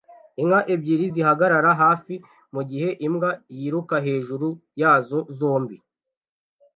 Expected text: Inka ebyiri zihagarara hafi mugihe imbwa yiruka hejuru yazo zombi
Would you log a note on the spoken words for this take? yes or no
no